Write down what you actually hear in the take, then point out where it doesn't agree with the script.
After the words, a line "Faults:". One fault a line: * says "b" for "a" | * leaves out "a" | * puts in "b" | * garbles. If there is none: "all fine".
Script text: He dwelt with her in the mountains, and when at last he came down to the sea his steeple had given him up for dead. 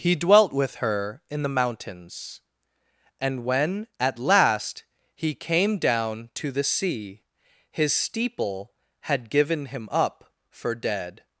He dwelt with her in the mountains, and when at last he came down to the sea his steeple had given him up for dead.
Faults:
all fine